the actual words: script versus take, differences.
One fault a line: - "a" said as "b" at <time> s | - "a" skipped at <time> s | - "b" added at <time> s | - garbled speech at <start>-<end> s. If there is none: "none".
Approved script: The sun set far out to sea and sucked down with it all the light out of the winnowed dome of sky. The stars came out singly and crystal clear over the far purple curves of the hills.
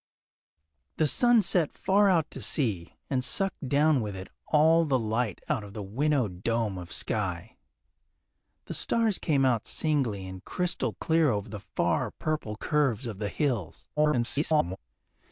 - garbled speech at 14.0-14.8 s